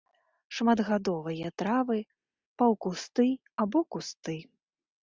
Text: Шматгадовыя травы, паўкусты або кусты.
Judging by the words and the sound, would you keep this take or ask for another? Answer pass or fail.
pass